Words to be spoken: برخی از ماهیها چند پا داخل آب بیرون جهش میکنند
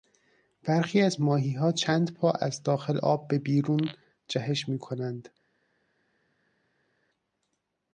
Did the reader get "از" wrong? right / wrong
right